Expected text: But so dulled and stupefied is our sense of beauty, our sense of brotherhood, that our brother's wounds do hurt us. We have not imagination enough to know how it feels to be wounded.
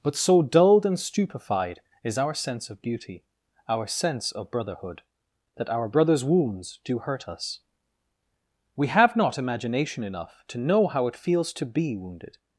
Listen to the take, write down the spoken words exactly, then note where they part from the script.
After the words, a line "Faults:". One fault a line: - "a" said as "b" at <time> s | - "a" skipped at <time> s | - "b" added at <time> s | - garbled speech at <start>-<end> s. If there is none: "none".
But so dulled and stupefied is our sense of beauty, our sense of brotherhood, that our brother's wounds do hurt us. We have not imagination enough to know how it feels to be wounded.
Faults:
none